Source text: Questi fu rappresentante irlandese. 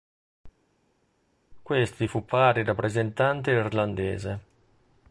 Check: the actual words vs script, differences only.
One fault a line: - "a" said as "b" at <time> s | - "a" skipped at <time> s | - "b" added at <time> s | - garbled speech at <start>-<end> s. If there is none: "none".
- "pari" added at 2.2 s